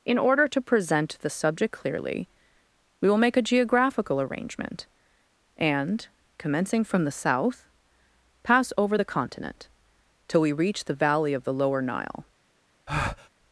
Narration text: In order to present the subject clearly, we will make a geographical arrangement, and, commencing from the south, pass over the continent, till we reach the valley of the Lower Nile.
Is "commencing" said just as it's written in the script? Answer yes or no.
yes